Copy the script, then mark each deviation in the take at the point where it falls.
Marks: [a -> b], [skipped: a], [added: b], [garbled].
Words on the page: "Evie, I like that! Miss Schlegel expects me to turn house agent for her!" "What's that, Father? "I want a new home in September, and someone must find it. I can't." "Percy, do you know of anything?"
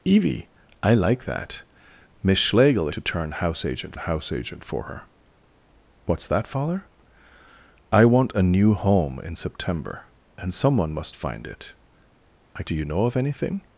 "Evie, I like that! Miss Schlegel [skipped: expects me] to turn house agent [added: house agent] for her!" "What's that, Father? "I want a new home in September, and someone must find it. I [skipped: can't." "Percy,] do you know of anything?"